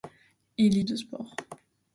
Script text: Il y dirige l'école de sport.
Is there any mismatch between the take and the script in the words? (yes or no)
yes